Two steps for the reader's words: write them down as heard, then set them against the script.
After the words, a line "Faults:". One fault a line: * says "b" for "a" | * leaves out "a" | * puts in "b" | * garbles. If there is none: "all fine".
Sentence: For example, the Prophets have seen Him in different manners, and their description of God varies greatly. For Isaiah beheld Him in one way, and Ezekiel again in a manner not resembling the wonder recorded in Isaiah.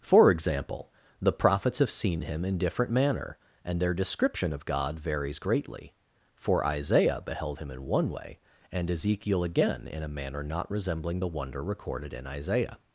For example, the Prophets have seen Him in different manner, and their description of God varies greatly. For Isaiah beheld Him in one way, and Ezekiel again in a manner not resembling the wonder recorded in Isaiah.
Faults:
* says "manner" for "manners"